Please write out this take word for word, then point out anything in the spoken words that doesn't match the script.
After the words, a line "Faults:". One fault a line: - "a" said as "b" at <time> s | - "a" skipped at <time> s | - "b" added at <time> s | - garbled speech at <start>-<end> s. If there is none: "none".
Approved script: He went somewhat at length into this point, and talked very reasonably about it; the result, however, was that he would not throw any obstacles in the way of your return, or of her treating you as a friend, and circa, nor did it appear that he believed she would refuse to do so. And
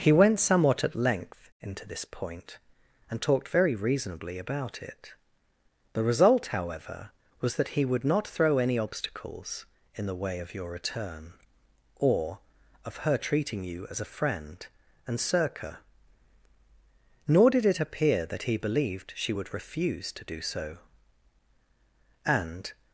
He went somewhat at length into this point, and talked very reasonably about it; the result, however, was that he would not throw any obstacles in the way of your return, or of her treating you as a friend, and circa, nor did it appear that he believed she would refuse to do so. And
Faults:
none